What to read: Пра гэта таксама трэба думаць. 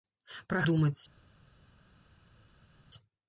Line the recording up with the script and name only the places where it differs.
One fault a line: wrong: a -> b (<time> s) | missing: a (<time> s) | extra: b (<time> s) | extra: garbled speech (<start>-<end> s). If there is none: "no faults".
missing: гэта таксама трэба (0.6 s)